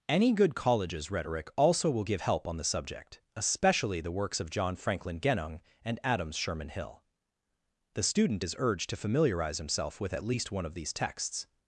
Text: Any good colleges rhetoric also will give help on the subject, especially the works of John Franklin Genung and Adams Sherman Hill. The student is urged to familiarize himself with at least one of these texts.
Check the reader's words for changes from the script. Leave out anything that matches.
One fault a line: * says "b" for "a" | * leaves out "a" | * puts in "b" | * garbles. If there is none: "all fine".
all fine